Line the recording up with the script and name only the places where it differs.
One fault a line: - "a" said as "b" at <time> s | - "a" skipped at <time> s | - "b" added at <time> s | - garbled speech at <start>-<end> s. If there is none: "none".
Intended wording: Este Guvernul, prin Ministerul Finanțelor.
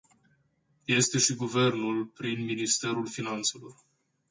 - "și" added at 1.2 s